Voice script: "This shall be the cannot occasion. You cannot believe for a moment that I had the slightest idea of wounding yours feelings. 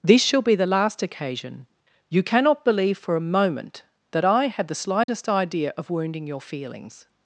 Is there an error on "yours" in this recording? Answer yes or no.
yes